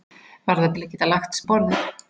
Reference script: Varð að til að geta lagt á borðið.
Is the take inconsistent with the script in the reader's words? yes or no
no